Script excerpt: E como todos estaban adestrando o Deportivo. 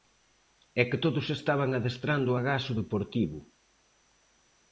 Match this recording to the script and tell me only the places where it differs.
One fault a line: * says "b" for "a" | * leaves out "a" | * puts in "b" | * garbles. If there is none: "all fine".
* says "que" for "como"
* puts in "agás"